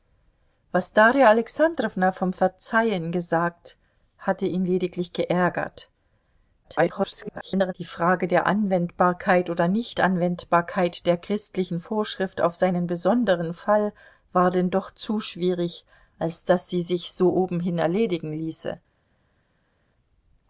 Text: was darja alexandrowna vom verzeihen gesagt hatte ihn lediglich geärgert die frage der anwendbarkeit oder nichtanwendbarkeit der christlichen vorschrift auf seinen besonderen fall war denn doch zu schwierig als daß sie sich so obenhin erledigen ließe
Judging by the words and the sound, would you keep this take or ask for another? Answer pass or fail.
fail